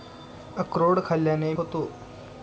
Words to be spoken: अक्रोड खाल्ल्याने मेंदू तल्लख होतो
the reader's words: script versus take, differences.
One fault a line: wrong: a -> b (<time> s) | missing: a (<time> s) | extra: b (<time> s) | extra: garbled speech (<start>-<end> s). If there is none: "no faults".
missing: मेंदू तल्लख (1.5 s)